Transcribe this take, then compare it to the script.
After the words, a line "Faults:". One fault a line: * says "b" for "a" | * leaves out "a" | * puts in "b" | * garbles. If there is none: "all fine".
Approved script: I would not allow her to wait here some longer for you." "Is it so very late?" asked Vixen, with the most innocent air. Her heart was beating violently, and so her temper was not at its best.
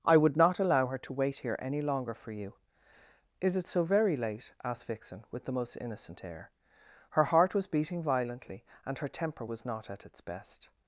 I would not allow her to wait here any longer for you." "Is it so very late?" asked Vixen, with the most innocent air. Her heart was beating violently, and her temper was not at its best.
Faults:
* says "any" for "some"
* leaves out "so"